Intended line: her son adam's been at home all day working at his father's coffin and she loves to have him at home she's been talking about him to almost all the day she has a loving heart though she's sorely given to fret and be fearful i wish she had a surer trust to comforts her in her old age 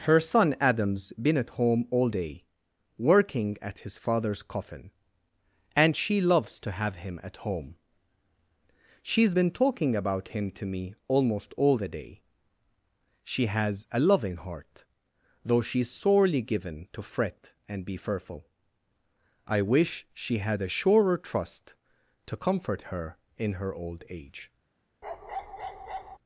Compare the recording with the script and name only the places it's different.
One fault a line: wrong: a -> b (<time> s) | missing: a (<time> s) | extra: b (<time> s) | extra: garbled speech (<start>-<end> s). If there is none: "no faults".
extra: me (10.7 s)
wrong: comforts -> comfort (22.4 s)